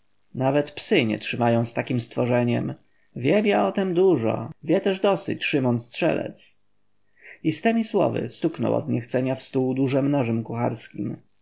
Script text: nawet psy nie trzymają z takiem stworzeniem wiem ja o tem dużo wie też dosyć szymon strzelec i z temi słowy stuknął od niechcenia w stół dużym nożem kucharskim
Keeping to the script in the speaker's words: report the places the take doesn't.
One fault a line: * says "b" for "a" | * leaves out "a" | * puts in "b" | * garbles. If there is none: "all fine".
all fine